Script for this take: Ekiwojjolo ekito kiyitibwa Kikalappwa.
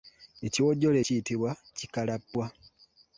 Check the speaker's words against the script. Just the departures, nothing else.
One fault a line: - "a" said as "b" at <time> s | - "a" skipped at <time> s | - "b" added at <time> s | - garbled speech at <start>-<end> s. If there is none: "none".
- "ekito" skipped at 1.0 s